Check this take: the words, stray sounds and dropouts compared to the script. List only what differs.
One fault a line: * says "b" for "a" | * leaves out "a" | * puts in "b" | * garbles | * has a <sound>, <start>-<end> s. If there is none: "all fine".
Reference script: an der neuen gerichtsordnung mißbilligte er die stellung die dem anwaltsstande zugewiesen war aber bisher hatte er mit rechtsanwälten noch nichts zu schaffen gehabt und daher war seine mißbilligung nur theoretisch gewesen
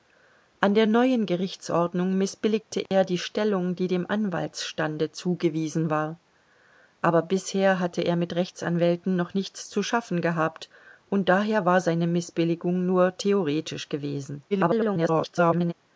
* has a dropout, 2.9-2.9 s
* garbles